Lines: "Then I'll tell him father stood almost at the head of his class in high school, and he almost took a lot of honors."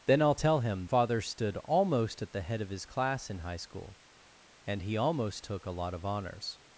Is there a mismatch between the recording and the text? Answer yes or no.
no